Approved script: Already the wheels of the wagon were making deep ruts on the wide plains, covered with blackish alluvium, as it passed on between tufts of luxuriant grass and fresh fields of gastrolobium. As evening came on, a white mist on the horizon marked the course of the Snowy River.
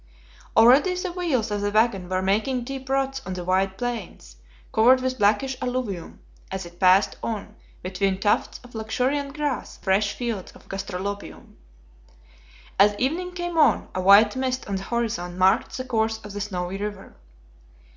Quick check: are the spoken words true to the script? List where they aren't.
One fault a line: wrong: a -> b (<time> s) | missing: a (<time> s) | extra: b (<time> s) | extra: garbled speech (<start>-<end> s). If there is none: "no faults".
missing: and (9.8 s)